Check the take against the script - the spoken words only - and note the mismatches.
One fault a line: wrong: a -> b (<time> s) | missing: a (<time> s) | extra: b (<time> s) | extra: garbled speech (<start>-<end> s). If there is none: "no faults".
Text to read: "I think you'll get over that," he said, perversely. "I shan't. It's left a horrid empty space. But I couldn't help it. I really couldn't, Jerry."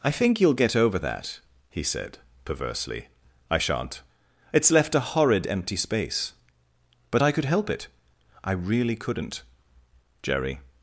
wrong: couldn't -> could (7.3 s)